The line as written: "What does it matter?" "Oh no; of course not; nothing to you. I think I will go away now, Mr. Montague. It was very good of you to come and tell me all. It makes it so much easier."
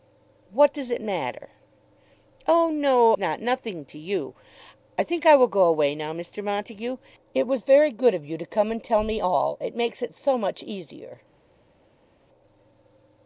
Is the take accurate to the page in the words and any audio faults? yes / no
no